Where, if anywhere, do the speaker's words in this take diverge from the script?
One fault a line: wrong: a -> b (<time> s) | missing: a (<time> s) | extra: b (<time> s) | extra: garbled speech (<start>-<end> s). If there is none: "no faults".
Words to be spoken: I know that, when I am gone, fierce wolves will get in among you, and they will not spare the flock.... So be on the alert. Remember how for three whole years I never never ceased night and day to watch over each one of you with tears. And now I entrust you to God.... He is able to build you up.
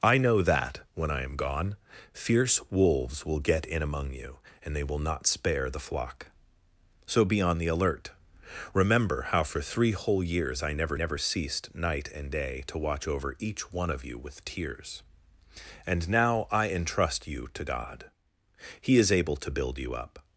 no faults